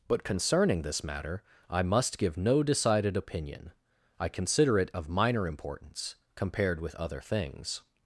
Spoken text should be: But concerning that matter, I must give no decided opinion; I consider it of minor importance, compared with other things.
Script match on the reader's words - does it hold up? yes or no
no